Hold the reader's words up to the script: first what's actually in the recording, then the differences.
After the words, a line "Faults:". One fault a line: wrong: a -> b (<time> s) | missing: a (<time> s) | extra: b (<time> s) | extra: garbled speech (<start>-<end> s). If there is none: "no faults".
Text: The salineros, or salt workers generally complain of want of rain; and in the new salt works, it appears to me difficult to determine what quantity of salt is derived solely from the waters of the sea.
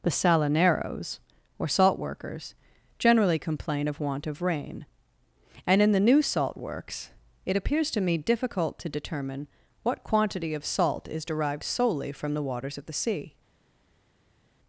The salineros, or salt workers generally complain of want of rain; and in the new salt works, it appears to me difficult to determine what quantity of salt is derived solely from the waters of the sea.
Faults:
no faults